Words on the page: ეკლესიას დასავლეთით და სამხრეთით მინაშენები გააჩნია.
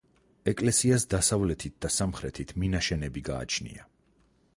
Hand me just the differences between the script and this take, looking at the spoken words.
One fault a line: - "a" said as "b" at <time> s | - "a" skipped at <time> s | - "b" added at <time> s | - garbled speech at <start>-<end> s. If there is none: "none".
none